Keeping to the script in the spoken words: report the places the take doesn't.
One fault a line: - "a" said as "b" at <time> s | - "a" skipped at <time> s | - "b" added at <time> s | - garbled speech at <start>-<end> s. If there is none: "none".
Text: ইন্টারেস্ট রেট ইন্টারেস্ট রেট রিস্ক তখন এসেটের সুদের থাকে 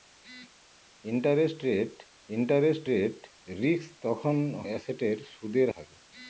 none